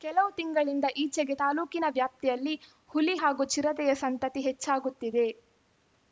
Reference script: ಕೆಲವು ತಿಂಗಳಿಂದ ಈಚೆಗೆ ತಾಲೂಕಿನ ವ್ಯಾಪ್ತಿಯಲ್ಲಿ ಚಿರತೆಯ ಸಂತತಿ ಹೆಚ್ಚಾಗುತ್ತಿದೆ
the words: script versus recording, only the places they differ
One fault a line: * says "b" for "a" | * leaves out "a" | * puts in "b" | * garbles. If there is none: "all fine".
* puts in "ಹುಲಿ ಹಾಗೂ"